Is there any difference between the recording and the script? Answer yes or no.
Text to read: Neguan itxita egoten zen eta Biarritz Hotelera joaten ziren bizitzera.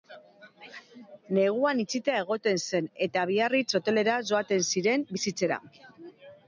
no